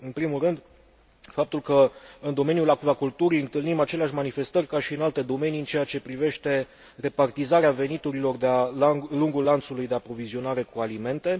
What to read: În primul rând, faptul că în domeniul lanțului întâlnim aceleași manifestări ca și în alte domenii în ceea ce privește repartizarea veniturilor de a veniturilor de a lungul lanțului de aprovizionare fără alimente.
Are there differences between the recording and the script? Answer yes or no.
yes